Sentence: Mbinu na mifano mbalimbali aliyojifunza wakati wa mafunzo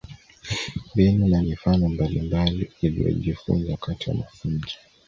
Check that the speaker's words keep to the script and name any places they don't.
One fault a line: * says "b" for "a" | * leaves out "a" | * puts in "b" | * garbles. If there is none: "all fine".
all fine